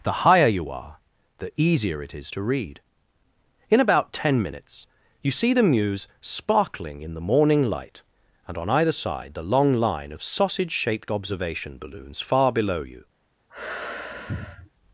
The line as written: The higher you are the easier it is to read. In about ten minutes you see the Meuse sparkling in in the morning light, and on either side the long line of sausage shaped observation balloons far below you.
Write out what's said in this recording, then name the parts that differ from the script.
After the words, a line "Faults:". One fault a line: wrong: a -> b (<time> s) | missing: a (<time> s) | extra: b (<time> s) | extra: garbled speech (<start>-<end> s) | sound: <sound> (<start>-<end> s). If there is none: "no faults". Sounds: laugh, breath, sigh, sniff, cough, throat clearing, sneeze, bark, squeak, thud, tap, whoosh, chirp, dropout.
The higher you are the easier it is to read. In about ten minutes you see the Meuse sparkling in the morning light, and on either side the long line of sausage shaped observation balloons far below you.
Faults:
missing: in (7.1 s)
sound: sneeze (13.5-14.7 s)